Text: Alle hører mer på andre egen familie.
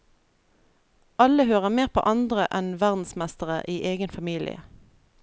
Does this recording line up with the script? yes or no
no